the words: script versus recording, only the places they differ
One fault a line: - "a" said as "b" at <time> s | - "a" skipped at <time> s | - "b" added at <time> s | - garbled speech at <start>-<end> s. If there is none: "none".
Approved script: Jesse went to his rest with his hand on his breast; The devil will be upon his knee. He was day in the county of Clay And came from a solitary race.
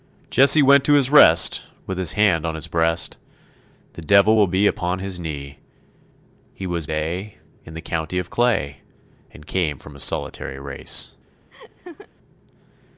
none